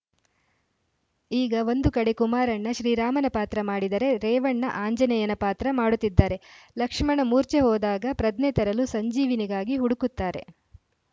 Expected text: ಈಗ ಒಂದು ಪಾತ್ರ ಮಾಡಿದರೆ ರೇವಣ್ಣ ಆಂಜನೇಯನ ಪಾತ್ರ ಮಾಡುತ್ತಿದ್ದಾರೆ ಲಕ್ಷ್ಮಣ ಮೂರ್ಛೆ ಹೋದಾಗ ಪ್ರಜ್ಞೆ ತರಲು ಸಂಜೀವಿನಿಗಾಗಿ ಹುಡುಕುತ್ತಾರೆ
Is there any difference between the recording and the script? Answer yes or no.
yes